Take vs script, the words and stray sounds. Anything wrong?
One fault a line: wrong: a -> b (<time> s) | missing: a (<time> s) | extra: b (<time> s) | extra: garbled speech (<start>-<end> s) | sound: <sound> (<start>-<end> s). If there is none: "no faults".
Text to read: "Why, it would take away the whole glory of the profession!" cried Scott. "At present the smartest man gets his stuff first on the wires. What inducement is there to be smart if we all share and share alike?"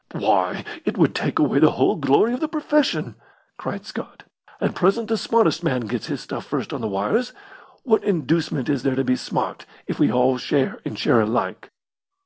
no faults